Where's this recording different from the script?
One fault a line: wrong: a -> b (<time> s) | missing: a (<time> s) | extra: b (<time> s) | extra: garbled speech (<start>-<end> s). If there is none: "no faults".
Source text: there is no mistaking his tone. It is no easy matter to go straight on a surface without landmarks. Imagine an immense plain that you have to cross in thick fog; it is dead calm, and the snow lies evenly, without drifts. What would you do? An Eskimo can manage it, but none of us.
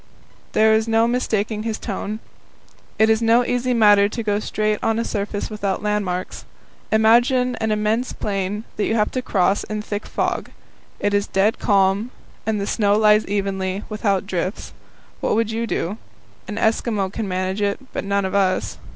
no faults